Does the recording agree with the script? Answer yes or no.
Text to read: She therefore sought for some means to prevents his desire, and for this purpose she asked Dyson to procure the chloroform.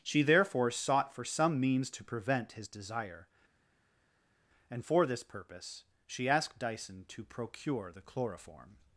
no